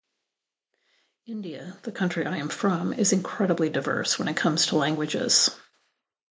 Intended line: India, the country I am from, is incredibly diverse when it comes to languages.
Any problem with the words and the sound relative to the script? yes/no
no